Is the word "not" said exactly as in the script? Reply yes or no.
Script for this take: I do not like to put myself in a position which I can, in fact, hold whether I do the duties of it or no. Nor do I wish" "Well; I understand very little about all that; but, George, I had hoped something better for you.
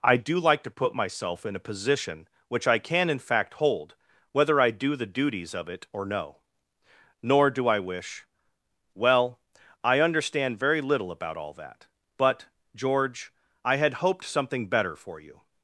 no